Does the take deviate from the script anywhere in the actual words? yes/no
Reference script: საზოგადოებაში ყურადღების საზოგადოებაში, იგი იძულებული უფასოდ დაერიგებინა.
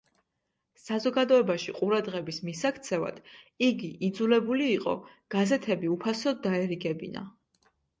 yes